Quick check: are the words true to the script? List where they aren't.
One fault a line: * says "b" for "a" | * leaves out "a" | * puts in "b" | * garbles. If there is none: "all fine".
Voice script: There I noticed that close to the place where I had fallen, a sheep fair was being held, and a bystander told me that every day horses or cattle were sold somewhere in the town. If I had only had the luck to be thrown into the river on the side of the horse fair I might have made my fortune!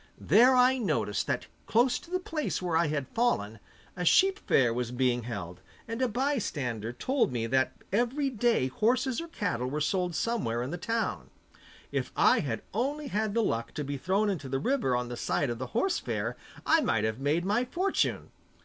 all fine